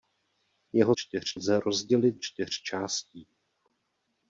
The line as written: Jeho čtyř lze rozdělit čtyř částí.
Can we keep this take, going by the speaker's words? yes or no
yes